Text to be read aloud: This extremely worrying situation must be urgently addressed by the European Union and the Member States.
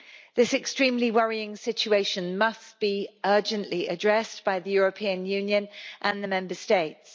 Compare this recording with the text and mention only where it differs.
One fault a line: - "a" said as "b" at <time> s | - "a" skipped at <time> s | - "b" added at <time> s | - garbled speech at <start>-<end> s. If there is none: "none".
none